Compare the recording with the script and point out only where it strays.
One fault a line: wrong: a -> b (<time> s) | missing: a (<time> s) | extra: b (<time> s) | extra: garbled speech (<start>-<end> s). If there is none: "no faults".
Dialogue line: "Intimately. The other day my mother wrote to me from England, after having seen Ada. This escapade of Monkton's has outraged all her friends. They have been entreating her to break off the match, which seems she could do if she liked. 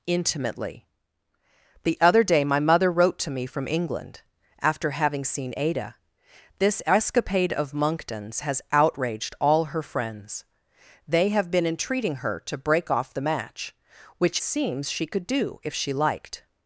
no faults